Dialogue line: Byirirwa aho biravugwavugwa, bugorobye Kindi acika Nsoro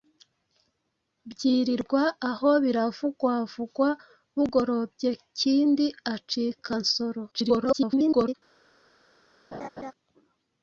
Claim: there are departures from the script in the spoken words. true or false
true